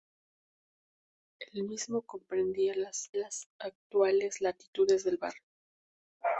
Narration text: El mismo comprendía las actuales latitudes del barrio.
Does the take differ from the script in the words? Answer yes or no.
yes